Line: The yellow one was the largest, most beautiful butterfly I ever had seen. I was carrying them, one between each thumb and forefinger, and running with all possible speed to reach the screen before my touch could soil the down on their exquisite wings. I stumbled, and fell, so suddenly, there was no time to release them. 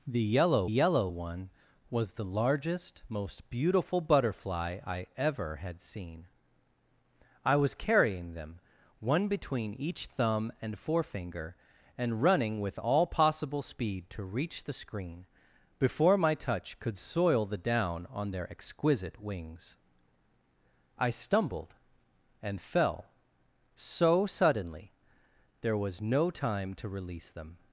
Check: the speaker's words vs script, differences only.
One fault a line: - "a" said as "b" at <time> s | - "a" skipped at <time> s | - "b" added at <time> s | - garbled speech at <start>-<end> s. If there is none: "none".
- "yellow" added at 0.6 s